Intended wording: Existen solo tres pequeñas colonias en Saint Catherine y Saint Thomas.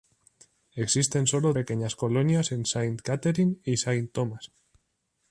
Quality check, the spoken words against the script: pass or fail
fail